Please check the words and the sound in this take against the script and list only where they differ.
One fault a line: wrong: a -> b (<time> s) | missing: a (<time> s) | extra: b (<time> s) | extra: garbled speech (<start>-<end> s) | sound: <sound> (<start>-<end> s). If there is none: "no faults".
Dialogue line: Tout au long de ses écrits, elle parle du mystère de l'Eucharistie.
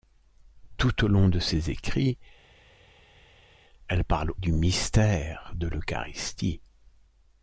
no faults